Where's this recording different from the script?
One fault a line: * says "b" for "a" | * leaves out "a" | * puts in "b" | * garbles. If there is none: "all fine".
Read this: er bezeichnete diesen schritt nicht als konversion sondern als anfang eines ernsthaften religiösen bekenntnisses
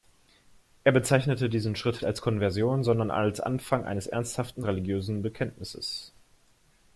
* leaves out "nicht"